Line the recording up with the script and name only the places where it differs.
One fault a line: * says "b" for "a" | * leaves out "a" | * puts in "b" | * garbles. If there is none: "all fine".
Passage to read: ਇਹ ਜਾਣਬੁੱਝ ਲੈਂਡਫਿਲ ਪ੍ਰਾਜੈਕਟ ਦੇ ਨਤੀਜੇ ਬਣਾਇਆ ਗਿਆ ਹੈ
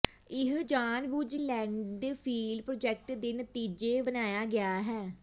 all fine